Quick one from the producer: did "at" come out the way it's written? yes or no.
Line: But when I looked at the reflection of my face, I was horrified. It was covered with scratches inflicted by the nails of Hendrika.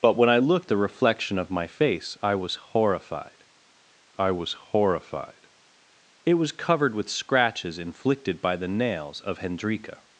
no